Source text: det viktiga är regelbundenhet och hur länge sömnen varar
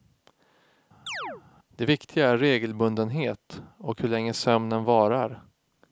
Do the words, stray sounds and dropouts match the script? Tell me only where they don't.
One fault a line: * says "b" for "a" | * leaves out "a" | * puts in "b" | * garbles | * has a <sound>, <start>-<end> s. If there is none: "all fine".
* has a chirp, 1.1-1.4 s